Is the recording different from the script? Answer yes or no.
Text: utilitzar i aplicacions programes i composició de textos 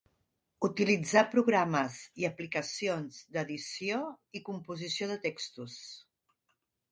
yes